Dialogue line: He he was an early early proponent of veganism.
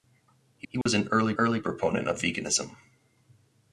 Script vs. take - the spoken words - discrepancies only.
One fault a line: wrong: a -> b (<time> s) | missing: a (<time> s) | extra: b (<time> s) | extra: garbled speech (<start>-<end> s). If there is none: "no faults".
no faults